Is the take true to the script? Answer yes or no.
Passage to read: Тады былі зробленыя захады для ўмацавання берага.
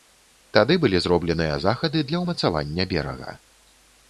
yes